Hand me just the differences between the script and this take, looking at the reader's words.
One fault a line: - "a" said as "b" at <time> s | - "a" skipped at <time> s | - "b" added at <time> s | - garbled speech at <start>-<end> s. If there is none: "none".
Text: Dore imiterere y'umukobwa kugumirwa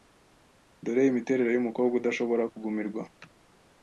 - "udashobora" added at 2.0 s